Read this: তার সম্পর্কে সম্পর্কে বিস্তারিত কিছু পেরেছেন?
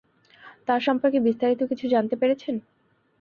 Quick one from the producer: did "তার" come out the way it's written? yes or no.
yes